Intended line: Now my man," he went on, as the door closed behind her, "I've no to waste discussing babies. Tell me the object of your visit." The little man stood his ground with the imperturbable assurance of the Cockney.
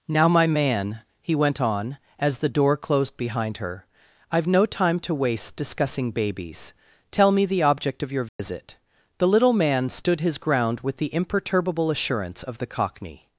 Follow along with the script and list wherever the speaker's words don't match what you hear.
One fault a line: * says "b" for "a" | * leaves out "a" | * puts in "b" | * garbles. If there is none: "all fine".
* puts in "time"